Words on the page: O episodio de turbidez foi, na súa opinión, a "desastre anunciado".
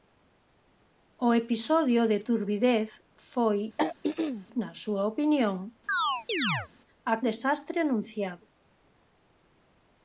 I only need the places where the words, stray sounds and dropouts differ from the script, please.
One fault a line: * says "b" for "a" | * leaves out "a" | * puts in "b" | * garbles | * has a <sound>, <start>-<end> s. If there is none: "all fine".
* has a throat clearing, 3.8-4.5 s
* has a chirp, 5.9-6.7 s